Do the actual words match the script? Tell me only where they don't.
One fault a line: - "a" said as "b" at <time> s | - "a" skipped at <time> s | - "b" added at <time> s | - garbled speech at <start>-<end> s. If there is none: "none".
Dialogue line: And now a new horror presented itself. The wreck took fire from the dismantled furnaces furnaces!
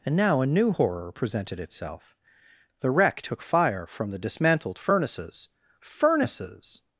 none